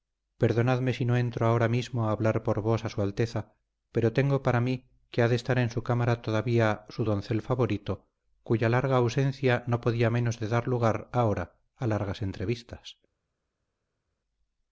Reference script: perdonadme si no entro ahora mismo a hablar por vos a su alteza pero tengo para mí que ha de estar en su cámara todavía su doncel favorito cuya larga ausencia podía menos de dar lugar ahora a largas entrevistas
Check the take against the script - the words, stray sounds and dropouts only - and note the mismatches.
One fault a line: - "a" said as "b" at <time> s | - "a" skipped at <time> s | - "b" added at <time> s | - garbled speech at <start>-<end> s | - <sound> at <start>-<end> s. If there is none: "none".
- "no" added at 9.7 s